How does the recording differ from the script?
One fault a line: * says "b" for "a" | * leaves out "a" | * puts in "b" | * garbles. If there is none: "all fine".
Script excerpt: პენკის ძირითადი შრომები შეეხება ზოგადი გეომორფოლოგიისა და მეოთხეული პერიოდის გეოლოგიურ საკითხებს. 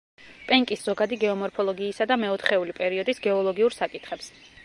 * leaves out "ძირითადი შრომები შეეხება"